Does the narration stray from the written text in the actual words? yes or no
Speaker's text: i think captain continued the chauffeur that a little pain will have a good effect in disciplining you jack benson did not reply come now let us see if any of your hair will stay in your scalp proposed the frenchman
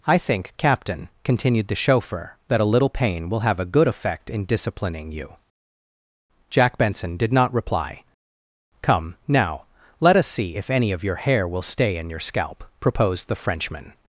no